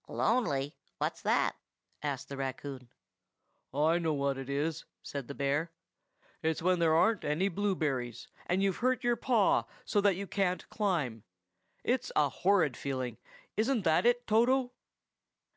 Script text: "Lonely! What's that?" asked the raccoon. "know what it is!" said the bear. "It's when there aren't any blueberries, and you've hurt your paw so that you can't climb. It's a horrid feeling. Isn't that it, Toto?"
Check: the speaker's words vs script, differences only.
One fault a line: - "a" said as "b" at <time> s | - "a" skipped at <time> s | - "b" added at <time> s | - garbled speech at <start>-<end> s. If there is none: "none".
- "I" added at 3.7 s